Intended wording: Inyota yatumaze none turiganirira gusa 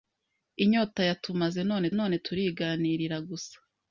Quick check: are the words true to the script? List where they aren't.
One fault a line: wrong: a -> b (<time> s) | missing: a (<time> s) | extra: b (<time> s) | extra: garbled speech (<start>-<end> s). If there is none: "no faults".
extra: none (2.0 s)